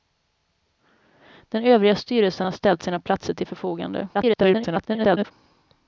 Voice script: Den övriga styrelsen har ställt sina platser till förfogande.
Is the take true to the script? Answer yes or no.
no